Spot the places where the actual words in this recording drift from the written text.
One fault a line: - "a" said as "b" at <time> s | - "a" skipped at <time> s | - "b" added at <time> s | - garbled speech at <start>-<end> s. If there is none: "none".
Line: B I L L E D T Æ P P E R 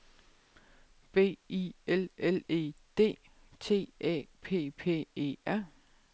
none